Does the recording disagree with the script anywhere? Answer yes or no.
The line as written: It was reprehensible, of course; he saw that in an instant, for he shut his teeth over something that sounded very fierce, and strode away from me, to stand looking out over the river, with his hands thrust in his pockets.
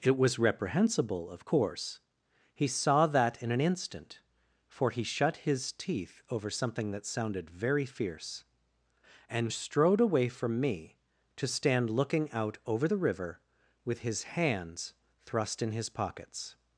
no